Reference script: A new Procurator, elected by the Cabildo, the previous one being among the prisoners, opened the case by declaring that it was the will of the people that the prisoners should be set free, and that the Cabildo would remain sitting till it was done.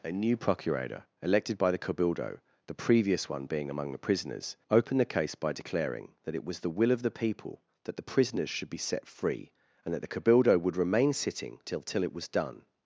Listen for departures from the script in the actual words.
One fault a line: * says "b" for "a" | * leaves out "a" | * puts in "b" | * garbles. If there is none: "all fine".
* puts in "till"